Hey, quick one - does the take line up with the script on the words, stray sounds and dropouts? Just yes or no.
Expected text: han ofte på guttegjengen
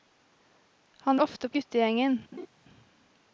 no